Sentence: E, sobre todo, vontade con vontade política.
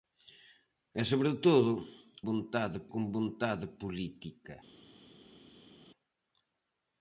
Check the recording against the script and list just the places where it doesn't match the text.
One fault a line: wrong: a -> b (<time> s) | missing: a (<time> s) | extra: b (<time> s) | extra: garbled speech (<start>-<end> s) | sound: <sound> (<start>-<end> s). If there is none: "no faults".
no faults